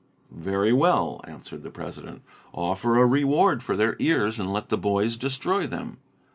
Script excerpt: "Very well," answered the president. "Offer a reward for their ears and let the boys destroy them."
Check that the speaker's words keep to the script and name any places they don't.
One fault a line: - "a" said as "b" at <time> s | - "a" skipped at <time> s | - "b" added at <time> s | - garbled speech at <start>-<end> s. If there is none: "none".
none